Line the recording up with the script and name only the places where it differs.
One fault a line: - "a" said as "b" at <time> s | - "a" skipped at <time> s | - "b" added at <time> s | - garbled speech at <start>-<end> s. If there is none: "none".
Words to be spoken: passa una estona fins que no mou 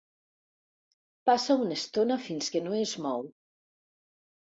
- "es" added at 2.8 s